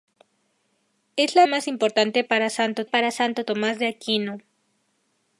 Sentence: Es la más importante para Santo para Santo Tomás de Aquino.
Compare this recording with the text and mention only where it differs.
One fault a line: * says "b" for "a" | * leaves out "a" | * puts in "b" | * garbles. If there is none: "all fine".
all fine